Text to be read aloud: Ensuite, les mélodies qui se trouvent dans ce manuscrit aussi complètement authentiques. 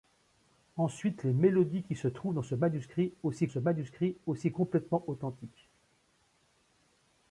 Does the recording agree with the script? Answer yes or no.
no